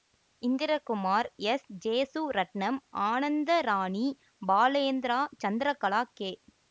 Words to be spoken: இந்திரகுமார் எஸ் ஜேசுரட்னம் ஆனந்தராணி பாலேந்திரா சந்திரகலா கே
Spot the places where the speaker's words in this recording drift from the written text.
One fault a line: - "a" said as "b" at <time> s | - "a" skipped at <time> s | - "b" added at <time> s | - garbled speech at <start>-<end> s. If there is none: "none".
none